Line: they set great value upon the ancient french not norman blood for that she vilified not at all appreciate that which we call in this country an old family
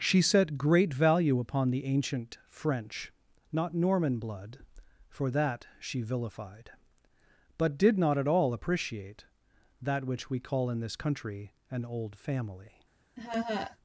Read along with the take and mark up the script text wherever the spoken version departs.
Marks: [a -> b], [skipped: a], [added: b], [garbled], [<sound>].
[they -> she] set great value upon the ancient french not norman blood for that she vilified [added: but did] not at all appreciate that which we call in this country an old family [laugh]